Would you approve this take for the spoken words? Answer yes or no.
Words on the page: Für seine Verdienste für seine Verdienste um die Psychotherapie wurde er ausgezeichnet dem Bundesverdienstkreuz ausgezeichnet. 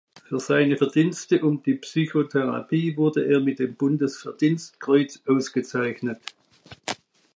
no